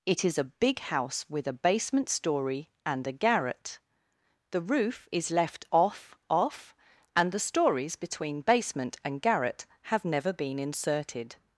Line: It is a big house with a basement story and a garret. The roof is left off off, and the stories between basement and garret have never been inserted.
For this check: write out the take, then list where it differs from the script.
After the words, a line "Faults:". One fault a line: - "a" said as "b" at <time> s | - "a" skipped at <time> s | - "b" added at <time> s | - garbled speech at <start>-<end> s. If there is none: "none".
It is a big house with a basement story and a garret. The roof is left off off, and the stories between basement and garret have never been inserted.
Faults:
none